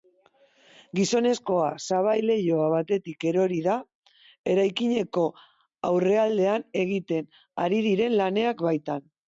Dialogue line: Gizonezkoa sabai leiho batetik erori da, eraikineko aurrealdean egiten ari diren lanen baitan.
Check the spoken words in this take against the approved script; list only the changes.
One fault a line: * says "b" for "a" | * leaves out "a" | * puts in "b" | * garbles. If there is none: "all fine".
all fine